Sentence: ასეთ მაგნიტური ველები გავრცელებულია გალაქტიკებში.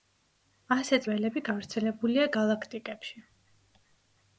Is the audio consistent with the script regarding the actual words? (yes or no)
no